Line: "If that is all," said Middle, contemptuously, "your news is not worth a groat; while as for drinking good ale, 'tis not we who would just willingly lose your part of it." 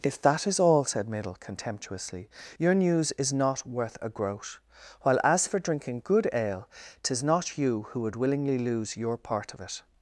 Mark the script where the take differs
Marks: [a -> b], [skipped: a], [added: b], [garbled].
"If that is all," said Middle, contemptuously, "your news is not worth a groat; while as for drinking good ale, 'tis not [we -> you] who would [skipped: just] willingly lose your part of it."